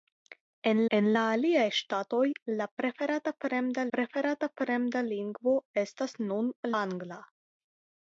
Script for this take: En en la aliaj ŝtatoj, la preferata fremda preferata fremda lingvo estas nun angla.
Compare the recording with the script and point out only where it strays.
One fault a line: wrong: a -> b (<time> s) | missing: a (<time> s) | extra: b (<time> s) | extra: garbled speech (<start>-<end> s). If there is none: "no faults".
no faults